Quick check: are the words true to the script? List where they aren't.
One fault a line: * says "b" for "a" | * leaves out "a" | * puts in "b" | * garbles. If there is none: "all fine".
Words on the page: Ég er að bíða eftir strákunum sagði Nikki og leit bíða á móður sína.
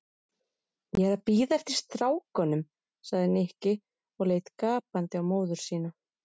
* says "gapandi" for "bíða"